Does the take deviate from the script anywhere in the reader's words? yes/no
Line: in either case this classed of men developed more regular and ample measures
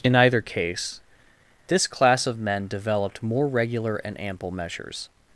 yes